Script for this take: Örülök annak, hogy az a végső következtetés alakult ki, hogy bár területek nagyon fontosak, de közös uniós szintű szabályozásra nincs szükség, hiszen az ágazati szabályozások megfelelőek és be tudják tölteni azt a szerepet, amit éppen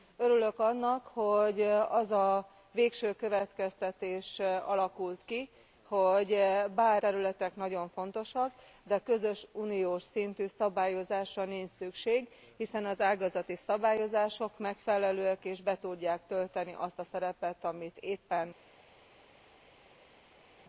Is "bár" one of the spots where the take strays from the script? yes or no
no